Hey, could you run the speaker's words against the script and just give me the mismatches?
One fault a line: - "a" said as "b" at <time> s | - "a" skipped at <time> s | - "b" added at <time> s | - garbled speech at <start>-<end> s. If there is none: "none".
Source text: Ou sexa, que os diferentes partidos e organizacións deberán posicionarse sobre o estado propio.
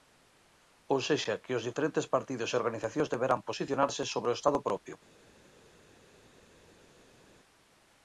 none